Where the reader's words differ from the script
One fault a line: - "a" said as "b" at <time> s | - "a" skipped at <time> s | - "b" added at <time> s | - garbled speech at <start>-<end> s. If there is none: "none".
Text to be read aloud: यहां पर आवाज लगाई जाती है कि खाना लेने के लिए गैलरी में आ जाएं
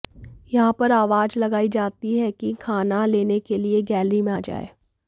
none